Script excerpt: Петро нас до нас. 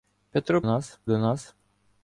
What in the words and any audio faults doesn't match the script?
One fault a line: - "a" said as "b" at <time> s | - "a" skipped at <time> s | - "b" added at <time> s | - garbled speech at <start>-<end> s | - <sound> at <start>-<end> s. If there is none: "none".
none